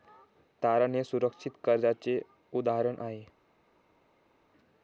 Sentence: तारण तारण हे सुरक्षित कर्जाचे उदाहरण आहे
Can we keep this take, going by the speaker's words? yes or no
no